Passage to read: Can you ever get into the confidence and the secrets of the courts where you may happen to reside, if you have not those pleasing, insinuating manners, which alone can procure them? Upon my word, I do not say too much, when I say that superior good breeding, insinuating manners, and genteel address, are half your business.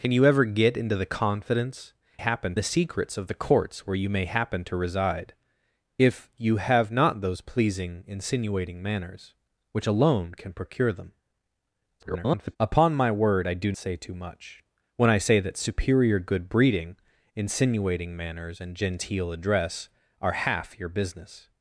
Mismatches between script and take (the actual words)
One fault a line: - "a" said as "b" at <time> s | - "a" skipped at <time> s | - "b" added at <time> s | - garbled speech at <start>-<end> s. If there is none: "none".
- "and" said as "happen" at 2.2 s
- garbled speech at 12.0-12.6 s
- "not" skipped at 13.7 s